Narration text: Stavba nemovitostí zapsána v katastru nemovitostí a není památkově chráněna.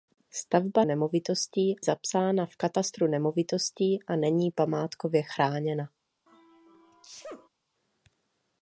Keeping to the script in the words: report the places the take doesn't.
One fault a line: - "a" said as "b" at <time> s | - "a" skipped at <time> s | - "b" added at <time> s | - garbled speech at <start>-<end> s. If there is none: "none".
none